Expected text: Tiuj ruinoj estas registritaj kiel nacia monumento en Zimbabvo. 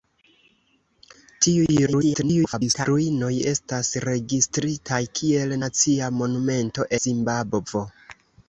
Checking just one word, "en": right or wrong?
wrong